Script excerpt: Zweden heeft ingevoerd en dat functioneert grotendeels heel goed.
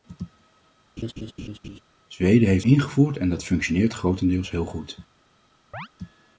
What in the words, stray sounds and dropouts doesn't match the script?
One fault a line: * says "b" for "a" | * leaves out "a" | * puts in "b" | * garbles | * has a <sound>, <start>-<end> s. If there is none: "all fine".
* has a laugh, 1.0-1.8 s
* has a chirp, 5.7-5.9 s